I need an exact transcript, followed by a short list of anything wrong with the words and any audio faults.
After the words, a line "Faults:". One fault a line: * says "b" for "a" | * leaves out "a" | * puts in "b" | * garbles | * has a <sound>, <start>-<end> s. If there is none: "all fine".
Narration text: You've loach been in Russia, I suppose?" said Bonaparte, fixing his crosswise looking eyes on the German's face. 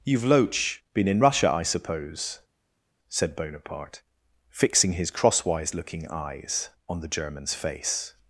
You've loach been in Russia, I suppose?" said Bonaparte, fixing his crosswise looking eyes on the German's face.
Faults:
all fine